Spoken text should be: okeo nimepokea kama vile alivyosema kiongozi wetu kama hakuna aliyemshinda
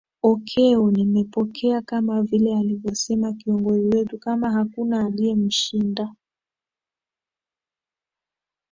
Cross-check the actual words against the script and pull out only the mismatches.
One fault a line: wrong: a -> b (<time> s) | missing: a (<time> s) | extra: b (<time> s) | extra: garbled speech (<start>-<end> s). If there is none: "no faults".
no faults